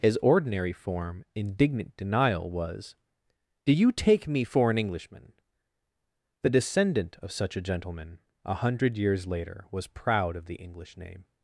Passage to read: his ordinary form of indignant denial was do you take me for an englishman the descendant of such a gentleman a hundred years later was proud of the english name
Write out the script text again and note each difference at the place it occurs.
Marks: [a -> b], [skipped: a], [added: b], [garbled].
his ordinary form [skipped: of] indignant denial was do you take me for an englishman the descendant of such a gentleman a hundred years later was proud of the english name